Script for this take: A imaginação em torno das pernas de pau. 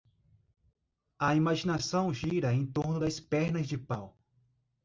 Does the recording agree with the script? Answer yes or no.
no